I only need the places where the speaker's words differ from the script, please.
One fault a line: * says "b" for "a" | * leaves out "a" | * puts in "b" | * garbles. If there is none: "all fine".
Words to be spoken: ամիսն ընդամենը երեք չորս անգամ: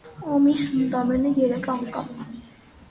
* leaves out "չորս"